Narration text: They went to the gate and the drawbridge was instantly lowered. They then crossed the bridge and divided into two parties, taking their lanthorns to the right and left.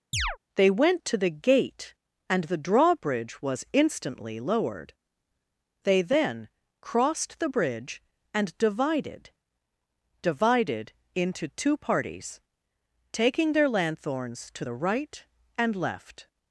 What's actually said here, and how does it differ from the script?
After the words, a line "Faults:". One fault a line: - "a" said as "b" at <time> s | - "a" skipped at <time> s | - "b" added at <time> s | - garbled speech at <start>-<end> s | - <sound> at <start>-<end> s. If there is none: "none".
They went to the gate and the drawbridge was instantly lowered. They then crossed the bridge and divided divided into two parties, taking their lanthorns to the right and left.
Faults:
- chirp at 0.1-0.4 s
- "divided" added at 10.2 s